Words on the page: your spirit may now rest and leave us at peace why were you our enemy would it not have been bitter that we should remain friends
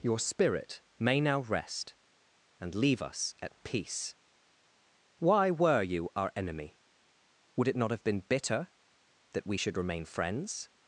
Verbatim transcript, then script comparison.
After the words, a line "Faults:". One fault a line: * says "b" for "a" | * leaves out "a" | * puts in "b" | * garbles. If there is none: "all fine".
your spirit may now rest and leave us at peace why were you our enemy would it not have been bitter that we should remain friends
Faults:
all fine